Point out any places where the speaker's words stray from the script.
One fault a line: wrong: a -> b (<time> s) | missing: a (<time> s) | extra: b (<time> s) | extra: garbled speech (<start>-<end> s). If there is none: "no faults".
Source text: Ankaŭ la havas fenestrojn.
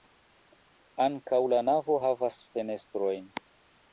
extra: navo (1.7 s)